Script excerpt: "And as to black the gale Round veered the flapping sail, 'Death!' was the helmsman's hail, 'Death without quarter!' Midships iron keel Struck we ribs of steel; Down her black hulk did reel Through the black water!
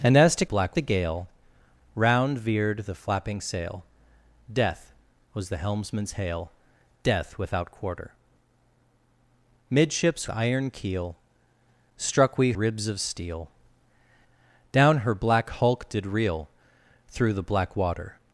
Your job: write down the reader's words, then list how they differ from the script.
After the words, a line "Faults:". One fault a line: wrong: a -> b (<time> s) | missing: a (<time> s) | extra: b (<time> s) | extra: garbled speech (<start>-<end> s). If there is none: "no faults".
"And as to black the gale Round veered the flapping sail, 'Death!' was the helmsman's hail, 'Death without quarter!' Midships iron keel Struck we ribs of steel; Down her black hulk did reel Through the black water!
Faults:
no faults